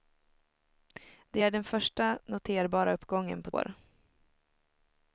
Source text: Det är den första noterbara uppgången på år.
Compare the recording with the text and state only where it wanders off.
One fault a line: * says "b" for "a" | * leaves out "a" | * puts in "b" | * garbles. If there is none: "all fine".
all fine